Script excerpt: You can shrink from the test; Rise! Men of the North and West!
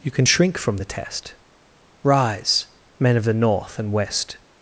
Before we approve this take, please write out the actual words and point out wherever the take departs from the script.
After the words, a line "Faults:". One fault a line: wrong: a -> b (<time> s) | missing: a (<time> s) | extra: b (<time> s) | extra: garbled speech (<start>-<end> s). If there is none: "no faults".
You can shrink from the test; Rise! Men of the North and West!
Faults:
no faults